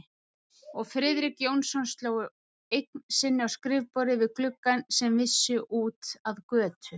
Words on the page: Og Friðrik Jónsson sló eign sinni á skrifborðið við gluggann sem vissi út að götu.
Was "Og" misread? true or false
false